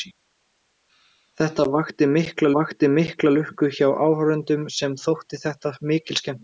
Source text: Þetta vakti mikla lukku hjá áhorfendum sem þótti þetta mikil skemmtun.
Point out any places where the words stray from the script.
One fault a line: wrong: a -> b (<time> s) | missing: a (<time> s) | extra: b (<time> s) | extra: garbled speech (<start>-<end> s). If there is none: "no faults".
extra: vakti mikla (2.6 s)